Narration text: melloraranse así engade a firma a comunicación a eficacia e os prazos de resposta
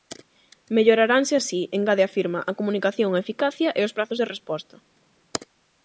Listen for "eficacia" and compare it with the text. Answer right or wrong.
right